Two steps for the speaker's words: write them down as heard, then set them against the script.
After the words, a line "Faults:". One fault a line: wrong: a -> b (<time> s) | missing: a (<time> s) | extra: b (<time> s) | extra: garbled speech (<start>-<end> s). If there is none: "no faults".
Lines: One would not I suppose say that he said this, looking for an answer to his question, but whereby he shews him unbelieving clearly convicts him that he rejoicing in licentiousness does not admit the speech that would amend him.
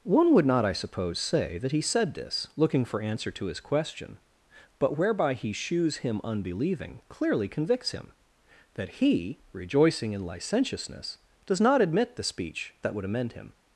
One would not I suppose say that he said this, looking for answer to his question, but whereby he shews him unbelieving clearly convicts him that he rejoicing in licentiousness does not admit the speech that would amend him.
Faults:
missing: an (3.0 s)